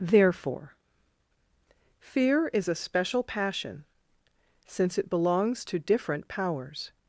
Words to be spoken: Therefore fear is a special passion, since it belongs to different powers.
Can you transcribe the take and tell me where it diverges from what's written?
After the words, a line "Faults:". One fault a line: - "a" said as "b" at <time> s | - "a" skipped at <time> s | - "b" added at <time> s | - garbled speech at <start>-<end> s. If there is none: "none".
Therefore fear is a special passion, since it belongs to different powers.
Faults:
none